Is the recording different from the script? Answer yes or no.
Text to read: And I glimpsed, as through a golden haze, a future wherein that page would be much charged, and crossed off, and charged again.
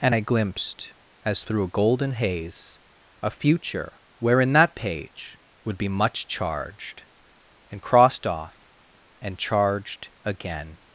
no